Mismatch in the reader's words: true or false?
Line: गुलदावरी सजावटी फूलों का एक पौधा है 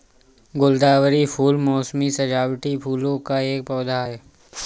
true